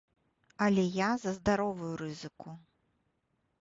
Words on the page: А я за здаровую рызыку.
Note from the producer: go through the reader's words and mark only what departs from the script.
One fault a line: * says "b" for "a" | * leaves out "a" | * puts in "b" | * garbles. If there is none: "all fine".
* says "Але" for "А"